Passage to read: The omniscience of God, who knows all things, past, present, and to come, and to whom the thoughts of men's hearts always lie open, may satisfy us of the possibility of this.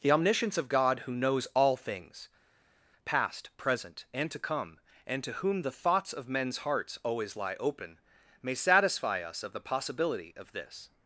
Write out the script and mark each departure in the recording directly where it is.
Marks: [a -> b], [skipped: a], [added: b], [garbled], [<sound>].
The omniscience of God, who knows all things, past, present, and to come, and to whom the thoughts of men's hearts always lie open, may satisfy us of the possibility of this.